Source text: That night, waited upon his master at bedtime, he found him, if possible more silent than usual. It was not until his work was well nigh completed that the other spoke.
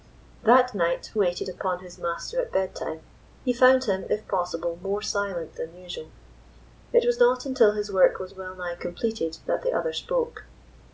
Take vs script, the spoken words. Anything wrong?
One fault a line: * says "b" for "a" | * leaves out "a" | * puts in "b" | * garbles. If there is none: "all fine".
all fine